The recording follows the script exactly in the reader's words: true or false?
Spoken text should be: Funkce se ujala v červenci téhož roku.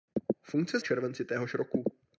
false